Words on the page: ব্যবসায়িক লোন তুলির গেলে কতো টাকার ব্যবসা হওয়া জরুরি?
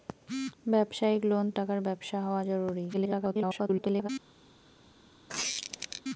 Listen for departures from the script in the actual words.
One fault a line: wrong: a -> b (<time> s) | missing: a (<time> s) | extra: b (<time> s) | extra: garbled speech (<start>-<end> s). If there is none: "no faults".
missing: তুলির গেলে কতো (1.4 s)
extra: garbled speech (2.9-4.1 s)